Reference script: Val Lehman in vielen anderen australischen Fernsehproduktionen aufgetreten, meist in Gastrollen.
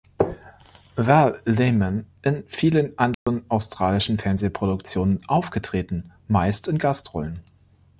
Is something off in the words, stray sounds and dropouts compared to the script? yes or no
yes